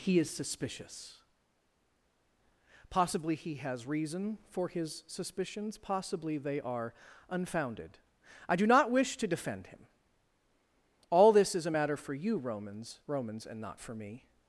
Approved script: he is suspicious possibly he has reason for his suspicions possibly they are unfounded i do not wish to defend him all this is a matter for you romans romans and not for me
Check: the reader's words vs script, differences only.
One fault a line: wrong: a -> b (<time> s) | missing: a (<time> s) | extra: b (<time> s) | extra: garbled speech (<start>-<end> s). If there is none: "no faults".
no faults